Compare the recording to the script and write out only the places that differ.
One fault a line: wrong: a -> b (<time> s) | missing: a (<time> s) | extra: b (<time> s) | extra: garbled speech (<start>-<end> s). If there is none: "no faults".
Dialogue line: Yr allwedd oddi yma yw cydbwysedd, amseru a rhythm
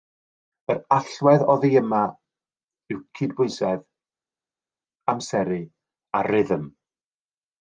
no faults